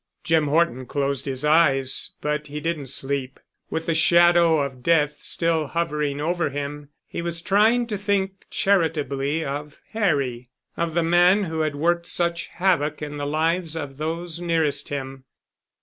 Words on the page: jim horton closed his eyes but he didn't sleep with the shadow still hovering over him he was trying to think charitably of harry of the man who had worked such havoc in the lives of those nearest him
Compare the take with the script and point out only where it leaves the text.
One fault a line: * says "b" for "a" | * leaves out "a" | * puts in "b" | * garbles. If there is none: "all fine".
* puts in "of death"